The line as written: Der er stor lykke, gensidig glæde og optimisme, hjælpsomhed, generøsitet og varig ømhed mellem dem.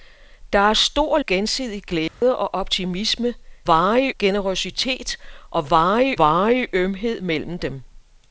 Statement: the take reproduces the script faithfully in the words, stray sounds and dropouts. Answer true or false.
false